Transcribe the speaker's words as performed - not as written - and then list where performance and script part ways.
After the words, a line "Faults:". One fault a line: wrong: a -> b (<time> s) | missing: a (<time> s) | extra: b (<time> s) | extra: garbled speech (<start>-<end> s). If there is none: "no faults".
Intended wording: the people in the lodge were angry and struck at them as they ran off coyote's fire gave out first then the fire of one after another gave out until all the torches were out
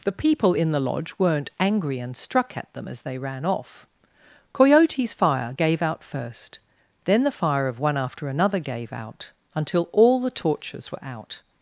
the people in the lodge weren't angry and struck at them as they ran off coyote's fire gave out first then the fire of one after another gave out until all the torches were out
Faults:
wrong: were -> weren't (1.2 s)